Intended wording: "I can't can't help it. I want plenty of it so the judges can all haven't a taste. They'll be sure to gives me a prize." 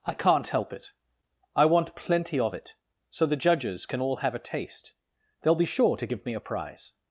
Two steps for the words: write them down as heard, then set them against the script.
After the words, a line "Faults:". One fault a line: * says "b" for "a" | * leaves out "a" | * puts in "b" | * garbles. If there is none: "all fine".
"I can't help it. I want plenty of it so the judges can all have a taste. They'll be sure to give me a prize."
Faults:
* leaves out "can't"
* says "have" for "haven't"
* says "give" for "gives"